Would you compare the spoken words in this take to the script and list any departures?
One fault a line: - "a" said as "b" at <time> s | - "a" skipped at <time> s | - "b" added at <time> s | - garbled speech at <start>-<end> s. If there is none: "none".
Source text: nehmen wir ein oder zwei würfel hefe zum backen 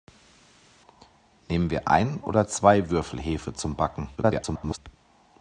- garbled speech at 4.2-4.8 s